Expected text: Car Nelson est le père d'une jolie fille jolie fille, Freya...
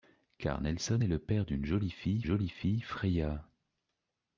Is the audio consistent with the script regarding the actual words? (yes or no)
yes